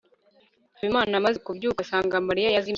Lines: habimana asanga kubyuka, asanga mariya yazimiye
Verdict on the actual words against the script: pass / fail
fail